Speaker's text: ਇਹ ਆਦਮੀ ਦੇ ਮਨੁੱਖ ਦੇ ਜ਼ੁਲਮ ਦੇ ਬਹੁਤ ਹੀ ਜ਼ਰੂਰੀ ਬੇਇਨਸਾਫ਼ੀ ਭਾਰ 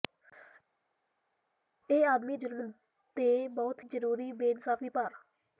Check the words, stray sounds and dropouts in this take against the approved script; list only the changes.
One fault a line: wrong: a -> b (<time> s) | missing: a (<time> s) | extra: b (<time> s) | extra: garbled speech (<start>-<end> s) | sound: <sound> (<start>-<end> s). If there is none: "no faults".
missing: ਦੇ ਮਨੁੱਖ ਦੇ (2.4 s)
missing: ਹੀ (3.8 s)